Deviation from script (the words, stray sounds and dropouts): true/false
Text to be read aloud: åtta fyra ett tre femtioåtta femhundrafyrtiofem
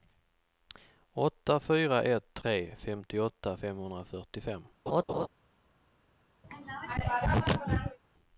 true